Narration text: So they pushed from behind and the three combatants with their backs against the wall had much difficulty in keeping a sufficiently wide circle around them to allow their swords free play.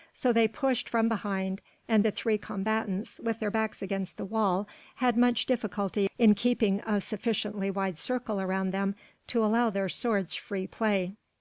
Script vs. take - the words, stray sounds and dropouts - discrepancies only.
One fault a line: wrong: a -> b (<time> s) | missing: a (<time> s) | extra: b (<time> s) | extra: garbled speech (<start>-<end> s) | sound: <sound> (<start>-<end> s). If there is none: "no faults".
no faults